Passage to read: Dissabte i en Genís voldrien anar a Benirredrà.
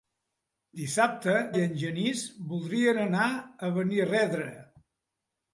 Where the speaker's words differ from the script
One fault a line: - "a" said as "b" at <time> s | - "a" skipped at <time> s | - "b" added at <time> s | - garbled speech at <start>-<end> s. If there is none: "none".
none